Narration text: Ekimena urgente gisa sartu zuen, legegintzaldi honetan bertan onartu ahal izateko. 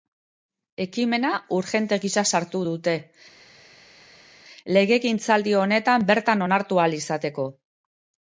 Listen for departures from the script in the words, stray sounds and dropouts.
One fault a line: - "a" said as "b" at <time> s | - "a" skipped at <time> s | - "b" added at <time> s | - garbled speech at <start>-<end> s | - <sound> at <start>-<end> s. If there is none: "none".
- "zuen" said as "dute" at 2.7 s